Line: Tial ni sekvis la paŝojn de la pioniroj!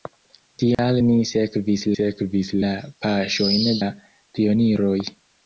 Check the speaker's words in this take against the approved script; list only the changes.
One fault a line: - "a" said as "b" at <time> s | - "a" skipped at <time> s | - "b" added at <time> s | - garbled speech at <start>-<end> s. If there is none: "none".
- "sekvis" added at 2.0 s
- "de" skipped at 3.7 s